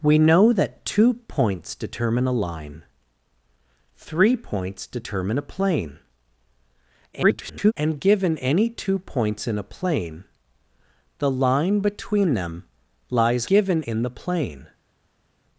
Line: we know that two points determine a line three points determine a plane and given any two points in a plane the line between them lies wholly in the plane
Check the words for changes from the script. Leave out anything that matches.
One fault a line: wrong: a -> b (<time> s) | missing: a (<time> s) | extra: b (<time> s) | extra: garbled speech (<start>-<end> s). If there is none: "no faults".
extra: garbled speech (7.1-7.7 s)
wrong: wholly -> given (13.4 s)